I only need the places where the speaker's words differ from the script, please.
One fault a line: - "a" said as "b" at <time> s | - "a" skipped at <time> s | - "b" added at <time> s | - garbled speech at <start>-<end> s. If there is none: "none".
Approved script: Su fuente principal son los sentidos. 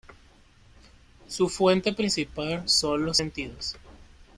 none